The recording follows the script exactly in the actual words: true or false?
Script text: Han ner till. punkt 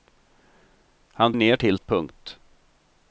true